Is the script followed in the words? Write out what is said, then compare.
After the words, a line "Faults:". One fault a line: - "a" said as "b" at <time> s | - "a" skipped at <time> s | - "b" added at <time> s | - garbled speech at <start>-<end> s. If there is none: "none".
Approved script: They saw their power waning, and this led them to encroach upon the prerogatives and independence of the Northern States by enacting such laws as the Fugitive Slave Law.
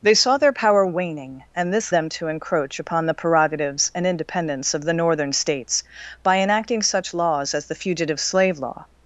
They saw their power waning, and this them to encroach upon the prerogatives and independence of the Northern States by enacting such laws as the Fugitive Slave Law.
Faults:
- "led" skipped at 1.9 s